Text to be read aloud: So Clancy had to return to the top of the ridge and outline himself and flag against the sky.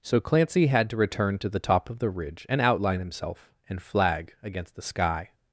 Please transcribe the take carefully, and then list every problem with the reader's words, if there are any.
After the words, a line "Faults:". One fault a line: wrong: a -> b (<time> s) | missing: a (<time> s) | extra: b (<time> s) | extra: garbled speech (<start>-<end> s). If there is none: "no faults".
So Clancy had to return to the top of the ridge and outline himself and flag against the sky.
Faults:
no faults